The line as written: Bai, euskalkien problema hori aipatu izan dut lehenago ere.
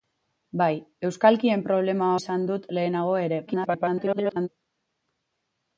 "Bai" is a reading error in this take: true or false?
false